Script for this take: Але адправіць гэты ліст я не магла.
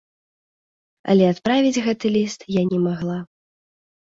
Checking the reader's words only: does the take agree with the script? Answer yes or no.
yes